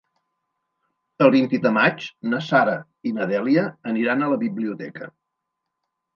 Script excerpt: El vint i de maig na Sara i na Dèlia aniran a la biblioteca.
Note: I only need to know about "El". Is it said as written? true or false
true